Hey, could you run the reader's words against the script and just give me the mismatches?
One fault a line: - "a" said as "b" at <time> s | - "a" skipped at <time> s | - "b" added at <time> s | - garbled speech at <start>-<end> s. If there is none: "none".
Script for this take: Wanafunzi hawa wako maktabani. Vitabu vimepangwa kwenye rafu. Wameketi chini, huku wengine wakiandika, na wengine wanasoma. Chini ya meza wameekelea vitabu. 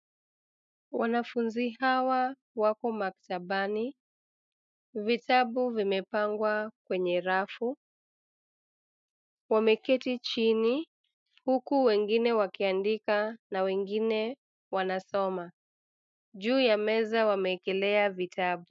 - "Chini" said as "Juu" at 16.3 s